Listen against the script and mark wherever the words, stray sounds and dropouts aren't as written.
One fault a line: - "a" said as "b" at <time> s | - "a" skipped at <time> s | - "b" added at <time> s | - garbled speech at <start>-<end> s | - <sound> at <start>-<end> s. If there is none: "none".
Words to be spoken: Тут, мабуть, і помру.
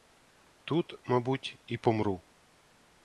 none